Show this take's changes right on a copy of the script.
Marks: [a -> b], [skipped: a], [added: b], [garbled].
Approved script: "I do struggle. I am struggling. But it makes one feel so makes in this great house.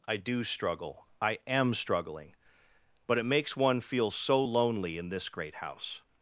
"I do struggle. I am struggling. But it makes one feel so [makes -> lonely] in this great house.